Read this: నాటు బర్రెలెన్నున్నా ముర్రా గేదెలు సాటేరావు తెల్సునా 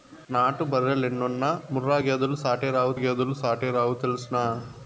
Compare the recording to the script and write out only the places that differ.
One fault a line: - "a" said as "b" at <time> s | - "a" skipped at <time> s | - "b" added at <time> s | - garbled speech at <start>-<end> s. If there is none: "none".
- "గేదెలు సాటేరావు" added at 2.9 s